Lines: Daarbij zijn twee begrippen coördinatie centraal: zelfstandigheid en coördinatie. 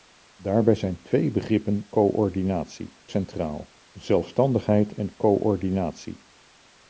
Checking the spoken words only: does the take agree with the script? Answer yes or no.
yes